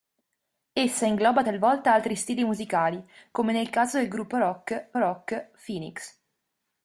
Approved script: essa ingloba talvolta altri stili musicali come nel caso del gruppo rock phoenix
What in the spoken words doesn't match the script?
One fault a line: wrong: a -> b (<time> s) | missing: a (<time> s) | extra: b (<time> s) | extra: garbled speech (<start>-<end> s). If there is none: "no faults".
extra: rock (5.0 s)